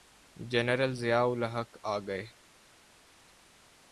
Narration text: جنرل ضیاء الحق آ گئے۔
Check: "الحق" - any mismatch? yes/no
no